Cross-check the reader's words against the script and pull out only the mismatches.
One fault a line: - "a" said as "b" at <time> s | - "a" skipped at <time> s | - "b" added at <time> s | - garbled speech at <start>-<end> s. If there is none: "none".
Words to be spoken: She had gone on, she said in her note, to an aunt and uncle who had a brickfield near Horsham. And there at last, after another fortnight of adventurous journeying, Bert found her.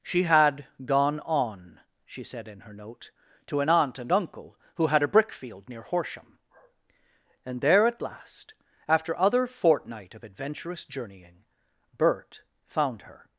- "another" said as "other" at 9.2 s